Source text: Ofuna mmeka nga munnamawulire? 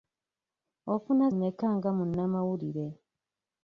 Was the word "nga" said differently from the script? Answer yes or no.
no